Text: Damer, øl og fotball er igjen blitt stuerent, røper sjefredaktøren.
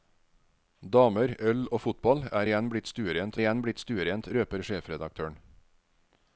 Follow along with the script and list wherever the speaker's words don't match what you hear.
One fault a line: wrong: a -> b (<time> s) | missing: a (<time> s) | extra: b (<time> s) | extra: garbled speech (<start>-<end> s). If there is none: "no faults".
extra: igjen blitt stuerent (3.4 s)